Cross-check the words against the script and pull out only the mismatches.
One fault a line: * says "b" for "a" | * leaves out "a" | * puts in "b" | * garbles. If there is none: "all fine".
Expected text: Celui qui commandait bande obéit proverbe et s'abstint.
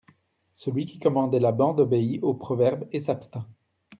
* puts in "la"
* puts in "au"